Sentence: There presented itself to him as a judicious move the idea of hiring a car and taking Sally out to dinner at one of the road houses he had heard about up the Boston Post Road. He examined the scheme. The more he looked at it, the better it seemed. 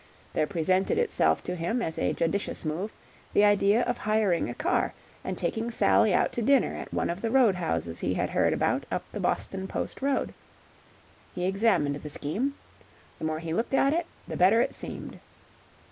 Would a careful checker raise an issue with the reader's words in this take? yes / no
no